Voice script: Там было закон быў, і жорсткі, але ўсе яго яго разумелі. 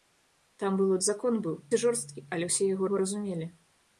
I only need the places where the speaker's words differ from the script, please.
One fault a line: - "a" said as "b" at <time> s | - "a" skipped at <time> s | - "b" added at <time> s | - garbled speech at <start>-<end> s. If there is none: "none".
none